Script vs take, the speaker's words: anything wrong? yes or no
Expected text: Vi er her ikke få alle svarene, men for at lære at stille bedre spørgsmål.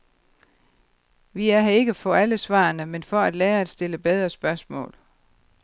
no